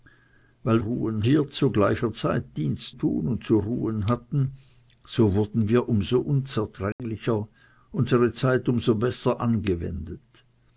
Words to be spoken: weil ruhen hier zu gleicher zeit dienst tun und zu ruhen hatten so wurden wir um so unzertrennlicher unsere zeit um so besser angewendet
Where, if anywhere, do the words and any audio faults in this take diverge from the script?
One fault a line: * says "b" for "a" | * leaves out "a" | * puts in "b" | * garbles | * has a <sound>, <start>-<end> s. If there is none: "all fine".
* has a dropout, 6.9-7.0 s